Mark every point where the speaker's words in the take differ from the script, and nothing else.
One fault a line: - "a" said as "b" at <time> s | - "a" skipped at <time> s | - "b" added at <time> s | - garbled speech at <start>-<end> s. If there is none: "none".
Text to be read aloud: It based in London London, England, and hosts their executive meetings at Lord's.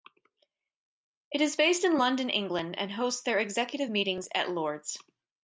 - "is" added at 1.4 s
- "London" skipped at 2.3 s